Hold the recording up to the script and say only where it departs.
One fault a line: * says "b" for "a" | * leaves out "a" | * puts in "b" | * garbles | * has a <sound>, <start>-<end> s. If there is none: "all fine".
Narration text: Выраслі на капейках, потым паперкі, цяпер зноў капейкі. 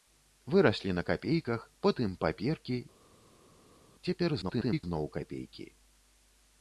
* garbles